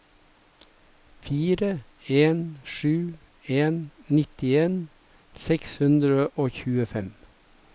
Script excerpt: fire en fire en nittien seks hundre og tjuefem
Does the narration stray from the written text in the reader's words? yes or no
yes